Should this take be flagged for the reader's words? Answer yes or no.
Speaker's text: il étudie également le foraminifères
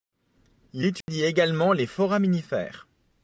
yes